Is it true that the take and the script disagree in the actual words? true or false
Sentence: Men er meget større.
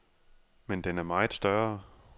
true